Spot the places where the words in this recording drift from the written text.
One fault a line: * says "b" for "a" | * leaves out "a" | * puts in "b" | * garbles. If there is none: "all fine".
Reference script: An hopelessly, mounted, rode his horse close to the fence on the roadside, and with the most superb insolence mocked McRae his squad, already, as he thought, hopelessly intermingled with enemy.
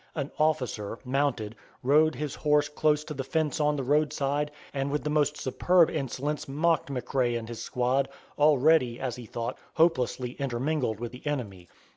* says "officer" for "hopelessly"
* puts in "and"
* puts in "the"